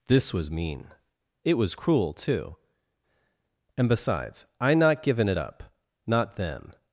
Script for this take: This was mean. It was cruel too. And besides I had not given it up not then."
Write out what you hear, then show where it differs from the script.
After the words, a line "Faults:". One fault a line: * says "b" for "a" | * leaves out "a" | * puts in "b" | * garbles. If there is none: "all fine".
This was mean. It was cruel too. And besides I not given it up not then."
Faults:
* leaves out "had"